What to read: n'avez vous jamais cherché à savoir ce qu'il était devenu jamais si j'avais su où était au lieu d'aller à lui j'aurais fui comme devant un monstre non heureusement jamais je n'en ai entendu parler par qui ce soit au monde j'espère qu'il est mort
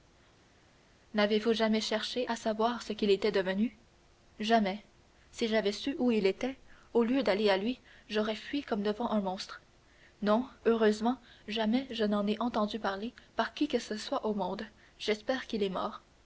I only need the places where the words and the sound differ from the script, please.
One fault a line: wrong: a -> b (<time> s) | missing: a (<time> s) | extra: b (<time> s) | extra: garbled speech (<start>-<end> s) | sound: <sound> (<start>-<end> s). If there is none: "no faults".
extra: il (6.1 s)
extra: que (13.7 s)